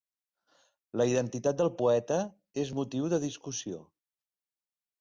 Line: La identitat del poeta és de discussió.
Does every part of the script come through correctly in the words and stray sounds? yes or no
no